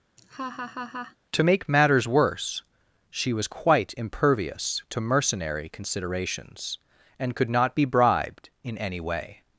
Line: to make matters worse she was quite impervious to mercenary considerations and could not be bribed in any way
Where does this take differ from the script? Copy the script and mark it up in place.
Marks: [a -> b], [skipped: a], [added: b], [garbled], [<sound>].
[laugh] to make matters worse she was quite impervious to mercenary considerations and could not be bribed in any way